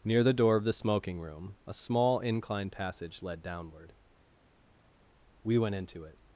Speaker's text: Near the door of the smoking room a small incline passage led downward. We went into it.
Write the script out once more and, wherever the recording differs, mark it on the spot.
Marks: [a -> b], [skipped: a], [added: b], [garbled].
Near the door of the smoking room a small incline passage led downward. We went into it.